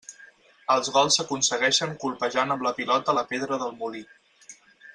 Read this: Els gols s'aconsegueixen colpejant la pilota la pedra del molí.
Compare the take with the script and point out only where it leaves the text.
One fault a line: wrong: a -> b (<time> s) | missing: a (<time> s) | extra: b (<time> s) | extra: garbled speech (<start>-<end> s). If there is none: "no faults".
extra: amb (2.5 s)